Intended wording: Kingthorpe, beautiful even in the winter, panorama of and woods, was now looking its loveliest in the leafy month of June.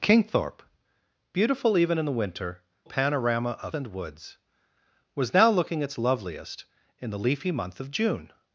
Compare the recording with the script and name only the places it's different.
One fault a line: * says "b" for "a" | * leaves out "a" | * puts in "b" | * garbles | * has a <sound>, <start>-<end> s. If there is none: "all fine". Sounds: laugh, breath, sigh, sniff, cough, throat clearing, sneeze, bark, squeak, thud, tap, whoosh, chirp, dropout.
all fine